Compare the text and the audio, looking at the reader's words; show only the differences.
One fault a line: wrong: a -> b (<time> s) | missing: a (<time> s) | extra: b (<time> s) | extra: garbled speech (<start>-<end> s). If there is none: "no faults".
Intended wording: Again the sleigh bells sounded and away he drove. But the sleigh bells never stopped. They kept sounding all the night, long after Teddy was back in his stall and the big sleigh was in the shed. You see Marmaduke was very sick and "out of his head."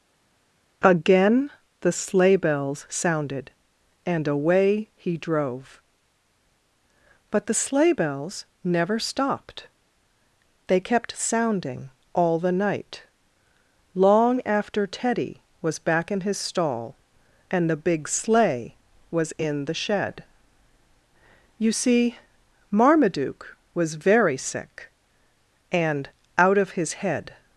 no faults